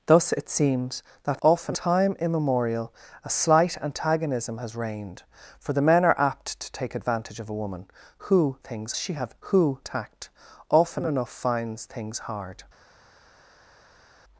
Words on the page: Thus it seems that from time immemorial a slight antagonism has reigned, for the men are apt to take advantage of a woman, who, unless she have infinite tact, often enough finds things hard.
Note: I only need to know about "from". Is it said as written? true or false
false